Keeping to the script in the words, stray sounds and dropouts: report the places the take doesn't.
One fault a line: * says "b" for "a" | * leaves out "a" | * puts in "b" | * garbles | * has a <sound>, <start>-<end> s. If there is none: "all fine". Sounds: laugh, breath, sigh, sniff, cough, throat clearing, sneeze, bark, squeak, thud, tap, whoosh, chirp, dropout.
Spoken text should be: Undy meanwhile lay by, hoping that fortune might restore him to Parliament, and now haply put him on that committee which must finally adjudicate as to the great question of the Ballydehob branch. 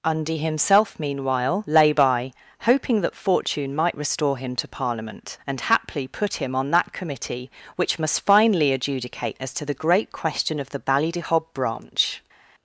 * puts in "himself"
* leaves out "now"